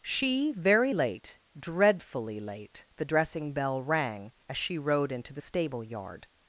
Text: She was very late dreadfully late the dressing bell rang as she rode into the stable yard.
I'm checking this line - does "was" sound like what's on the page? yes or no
no